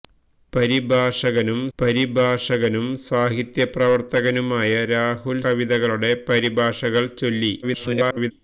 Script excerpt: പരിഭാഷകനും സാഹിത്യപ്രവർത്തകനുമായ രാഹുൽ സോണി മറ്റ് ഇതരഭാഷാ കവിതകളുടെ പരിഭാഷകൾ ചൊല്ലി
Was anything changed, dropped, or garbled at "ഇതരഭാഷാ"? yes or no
yes